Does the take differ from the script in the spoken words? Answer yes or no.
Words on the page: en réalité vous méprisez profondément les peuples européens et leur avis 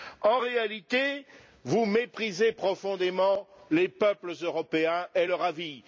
no